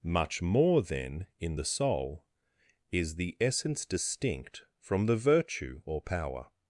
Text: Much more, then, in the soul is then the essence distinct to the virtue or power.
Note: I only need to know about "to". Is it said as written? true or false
false